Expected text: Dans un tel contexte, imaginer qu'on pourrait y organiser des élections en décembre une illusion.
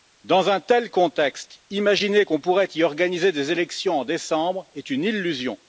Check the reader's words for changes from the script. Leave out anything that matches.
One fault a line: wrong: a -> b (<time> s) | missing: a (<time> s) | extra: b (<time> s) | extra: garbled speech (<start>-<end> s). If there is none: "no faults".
extra: est (4.7 s)